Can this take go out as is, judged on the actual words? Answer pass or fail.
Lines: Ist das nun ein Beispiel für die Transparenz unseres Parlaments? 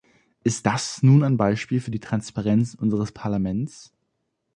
pass